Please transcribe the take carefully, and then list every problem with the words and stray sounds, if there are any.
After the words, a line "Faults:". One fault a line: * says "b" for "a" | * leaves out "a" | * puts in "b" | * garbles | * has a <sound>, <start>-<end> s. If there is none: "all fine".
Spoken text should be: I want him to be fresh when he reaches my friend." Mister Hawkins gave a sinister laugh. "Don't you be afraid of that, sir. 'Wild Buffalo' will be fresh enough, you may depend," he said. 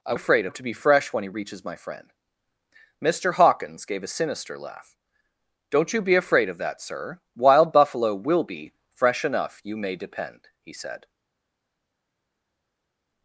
I afraid him to be fresh when he reaches my friend." Mister Hawkins gave a sinister laugh. "Don't you be afraid of that, sir. 'Wild Buffalo' will be fresh enough, you may depend," he said.
Faults:
* says "afraid" for "want"